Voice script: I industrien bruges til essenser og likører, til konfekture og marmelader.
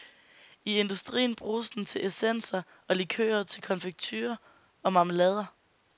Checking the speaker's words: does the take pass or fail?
fail